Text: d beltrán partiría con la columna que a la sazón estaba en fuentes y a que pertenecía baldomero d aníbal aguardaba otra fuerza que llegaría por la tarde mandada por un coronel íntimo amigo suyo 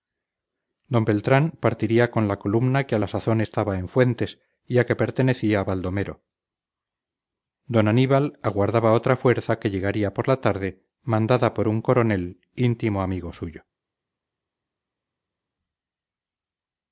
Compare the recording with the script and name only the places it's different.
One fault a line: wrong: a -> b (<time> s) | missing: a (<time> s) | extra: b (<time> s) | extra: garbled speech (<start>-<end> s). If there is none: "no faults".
no faults